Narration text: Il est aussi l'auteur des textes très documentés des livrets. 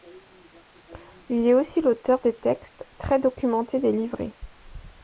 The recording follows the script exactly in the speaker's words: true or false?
true